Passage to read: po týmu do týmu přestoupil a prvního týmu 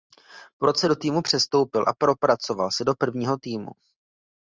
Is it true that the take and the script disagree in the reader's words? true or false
true